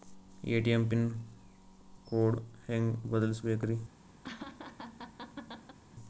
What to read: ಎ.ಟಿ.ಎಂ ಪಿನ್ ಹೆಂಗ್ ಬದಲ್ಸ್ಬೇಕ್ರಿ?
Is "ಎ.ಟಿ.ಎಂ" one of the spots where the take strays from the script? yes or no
no